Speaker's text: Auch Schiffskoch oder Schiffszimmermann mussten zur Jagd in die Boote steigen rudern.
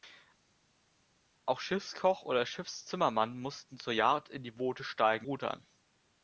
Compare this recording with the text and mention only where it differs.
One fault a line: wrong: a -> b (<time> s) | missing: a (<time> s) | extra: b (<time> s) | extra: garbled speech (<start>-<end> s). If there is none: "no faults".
no faults